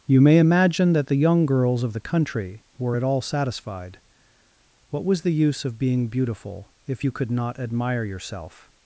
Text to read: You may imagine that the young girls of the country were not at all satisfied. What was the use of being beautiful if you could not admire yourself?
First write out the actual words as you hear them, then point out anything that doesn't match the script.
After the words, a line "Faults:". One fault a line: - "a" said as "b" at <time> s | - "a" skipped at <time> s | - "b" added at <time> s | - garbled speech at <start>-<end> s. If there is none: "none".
You may imagine that the young girls of the country were at all satisfied. What was the use of being beautiful if you could not admire yourself?
Faults:
- "not" skipped at 3.0 s